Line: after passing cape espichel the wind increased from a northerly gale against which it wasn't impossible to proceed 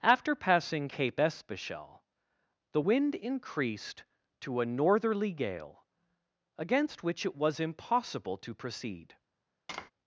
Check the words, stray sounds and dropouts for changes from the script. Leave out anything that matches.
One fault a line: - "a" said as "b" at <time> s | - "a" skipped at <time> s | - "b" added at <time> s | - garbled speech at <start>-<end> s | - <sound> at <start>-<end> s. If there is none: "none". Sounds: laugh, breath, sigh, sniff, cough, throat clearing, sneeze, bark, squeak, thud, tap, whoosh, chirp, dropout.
- "from" said as "to" at 4.4 s
- "wasn't" said as "was" at 7.3 s
- tap at 9.7-9.9 s